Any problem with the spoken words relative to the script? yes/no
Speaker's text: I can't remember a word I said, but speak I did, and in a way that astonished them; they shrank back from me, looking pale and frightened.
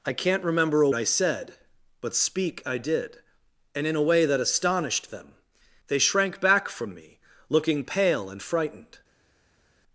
yes